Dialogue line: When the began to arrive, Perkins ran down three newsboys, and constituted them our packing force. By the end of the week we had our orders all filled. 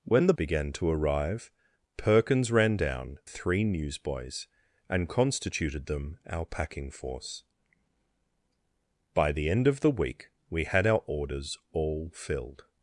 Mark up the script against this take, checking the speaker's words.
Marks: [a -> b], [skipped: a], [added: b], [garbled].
When the began to arrive, Perkins ran down three newsboys, and constituted them our packing force. By the end of the week we had our orders all filled.